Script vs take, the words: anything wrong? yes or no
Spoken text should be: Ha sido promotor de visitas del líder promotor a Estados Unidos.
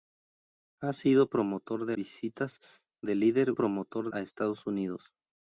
no